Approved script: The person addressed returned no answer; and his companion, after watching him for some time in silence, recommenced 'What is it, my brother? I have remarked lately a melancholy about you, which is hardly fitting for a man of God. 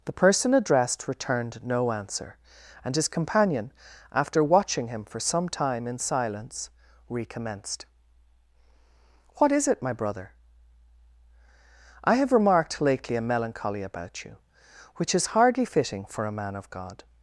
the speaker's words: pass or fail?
pass